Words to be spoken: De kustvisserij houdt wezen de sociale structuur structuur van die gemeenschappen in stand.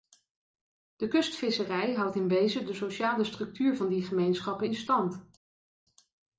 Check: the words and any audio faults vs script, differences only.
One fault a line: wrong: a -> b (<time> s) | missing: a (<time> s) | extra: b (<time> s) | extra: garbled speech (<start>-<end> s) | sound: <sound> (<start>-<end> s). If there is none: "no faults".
extra: in (2.1 s)
missing: structuur (3.8 s)